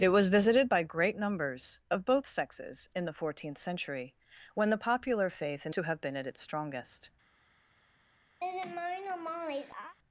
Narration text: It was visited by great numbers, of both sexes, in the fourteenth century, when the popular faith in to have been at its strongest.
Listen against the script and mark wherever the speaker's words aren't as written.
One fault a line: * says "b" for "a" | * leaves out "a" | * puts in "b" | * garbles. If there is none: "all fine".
all fine